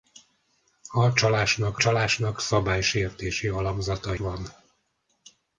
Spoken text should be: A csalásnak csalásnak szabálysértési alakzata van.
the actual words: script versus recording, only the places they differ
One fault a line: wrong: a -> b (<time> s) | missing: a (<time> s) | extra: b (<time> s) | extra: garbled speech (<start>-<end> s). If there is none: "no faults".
no faults